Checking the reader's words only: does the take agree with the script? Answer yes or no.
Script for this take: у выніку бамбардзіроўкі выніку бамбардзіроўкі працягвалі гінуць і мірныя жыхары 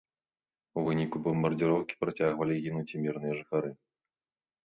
no